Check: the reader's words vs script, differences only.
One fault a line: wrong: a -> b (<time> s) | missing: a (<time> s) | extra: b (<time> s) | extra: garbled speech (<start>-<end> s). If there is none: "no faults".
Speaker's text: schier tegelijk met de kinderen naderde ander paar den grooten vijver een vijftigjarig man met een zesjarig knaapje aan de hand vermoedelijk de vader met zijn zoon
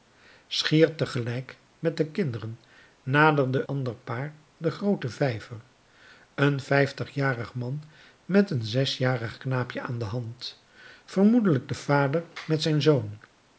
no faults